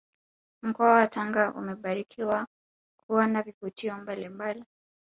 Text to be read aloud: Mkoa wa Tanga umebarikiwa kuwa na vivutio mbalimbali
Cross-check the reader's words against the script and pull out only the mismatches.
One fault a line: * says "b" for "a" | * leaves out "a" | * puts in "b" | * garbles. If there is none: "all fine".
all fine